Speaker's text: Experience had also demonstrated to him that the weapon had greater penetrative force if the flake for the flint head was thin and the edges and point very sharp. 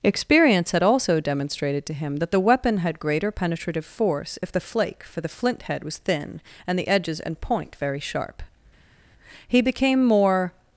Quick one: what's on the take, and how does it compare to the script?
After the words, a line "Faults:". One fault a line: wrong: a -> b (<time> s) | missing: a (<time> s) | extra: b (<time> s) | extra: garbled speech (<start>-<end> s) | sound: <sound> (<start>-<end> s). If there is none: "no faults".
Experience had also demonstrated to him that the weapon had greater penetrative force if the flake for the flint head was thin and the edges and point very sharp. He became more
Faults:
extra: He became more (9.5 s)